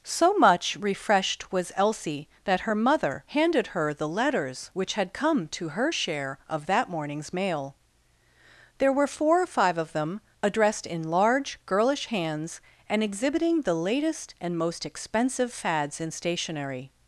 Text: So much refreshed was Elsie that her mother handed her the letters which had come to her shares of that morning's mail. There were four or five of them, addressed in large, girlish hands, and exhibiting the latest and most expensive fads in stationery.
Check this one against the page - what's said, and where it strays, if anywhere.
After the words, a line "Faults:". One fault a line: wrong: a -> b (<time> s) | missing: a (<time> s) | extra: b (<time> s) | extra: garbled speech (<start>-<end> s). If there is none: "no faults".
So much refreshed was Elsie that her mother handed her the letters which had come to her share of that morning's mail. There were four or five of them, addressed in large, girlish hands, and exhibiting the latest and most expensive fads in stationery.
Faults:
wrong: shares -> share (5.9 s)